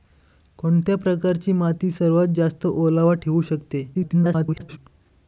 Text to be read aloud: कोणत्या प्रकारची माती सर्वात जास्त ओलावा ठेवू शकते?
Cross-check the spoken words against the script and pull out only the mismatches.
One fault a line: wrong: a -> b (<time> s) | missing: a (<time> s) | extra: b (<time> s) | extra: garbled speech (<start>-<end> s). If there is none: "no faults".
extra: garbled speech (3.9-4.8 s)